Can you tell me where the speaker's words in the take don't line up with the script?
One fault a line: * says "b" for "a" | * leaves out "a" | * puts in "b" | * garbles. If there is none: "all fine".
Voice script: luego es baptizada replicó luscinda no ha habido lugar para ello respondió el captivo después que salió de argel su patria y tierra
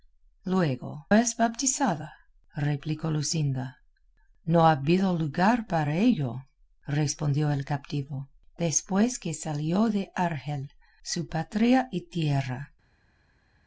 all fine